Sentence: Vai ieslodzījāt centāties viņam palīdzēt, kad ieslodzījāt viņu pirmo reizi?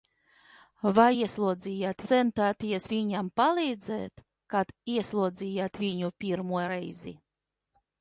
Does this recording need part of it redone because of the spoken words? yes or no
no